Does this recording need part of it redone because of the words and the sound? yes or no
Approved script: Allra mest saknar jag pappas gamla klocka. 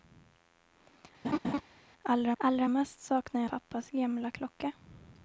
yes